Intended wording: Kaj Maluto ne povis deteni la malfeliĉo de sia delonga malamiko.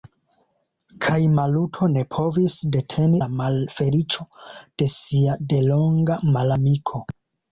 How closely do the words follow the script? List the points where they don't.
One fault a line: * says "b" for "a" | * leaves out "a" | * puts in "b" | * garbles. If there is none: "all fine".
all fine